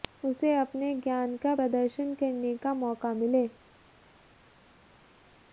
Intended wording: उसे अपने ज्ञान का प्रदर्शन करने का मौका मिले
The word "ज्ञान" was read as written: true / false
true